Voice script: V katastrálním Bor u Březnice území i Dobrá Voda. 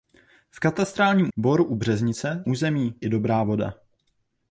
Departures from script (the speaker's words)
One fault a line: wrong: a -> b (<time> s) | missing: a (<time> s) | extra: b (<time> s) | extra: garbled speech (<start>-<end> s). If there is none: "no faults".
no faults